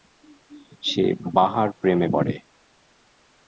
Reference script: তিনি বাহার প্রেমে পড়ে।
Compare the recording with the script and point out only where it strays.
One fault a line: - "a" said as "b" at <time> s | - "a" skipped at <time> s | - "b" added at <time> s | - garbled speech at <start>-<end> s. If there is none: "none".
- "তিনি" said as "সে" at 0.8 s